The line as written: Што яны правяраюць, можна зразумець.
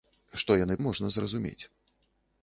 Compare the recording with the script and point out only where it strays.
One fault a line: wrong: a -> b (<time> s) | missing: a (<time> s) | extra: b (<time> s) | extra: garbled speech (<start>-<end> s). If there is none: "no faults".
missing: правяраюць (0.8 s)